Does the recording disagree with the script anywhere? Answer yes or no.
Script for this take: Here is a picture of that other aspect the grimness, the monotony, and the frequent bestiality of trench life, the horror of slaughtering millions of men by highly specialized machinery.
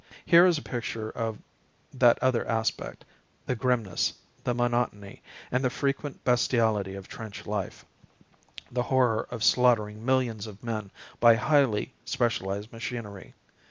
no